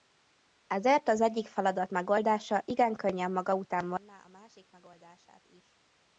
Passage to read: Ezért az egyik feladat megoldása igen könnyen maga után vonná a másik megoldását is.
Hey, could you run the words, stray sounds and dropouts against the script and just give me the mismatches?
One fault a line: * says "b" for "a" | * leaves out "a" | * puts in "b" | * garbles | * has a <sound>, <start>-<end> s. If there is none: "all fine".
all fine